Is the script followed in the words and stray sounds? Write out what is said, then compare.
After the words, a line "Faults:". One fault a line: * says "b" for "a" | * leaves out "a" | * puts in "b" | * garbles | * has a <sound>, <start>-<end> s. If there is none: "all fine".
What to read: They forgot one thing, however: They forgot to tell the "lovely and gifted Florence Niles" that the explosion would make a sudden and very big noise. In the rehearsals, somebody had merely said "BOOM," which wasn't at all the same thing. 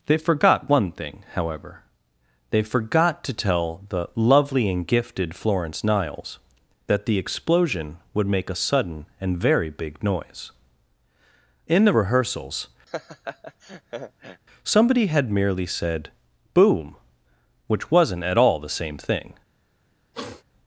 They forgot one thing, however: They forgot to tell the "lovely and gifted Florence Niles" that the explosion would make a sudden and very big noise. In the rehearsals, somebody had merely said "BOOM," which wasn't at all the same thing.
Faults:
* has a laugh, 12.9-14.4 s
* has a sniff, 20.1-20.4 s